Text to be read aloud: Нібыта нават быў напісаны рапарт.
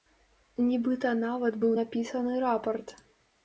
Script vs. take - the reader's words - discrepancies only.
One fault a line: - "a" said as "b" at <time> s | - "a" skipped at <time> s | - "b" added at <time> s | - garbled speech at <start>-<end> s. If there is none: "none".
none